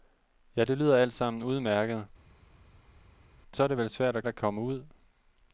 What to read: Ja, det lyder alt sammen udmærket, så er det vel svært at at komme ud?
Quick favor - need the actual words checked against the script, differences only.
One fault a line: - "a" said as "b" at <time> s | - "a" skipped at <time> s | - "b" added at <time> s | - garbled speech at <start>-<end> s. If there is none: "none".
none